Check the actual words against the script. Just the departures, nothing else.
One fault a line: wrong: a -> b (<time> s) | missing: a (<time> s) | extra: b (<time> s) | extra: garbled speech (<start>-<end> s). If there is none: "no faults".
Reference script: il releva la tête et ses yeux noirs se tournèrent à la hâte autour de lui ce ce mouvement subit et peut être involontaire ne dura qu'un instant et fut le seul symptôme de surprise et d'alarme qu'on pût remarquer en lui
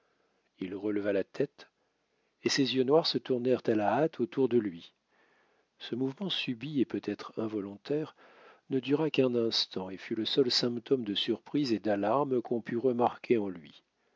missing: ce (5.9 s)